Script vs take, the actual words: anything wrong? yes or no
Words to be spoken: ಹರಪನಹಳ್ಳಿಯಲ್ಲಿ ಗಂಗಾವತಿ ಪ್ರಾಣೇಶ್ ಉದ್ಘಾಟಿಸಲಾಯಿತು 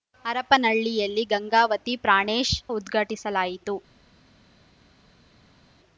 no